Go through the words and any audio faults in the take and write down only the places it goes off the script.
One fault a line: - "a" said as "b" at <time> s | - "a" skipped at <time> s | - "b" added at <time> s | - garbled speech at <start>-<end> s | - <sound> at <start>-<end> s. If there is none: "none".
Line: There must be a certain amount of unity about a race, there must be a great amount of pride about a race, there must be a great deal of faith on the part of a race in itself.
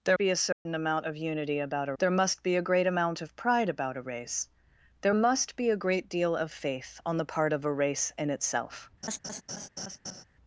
- "must" skipped at 0.2 s
- dropout at 0.5-0.7 s
- "race" skipped at 1.9 s
- laugh at 9.0-10.2 s